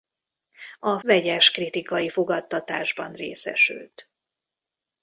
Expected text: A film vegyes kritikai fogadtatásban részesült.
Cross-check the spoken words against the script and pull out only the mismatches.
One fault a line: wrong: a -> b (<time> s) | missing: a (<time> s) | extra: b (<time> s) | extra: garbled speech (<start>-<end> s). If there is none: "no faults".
missing: film (1.0 s)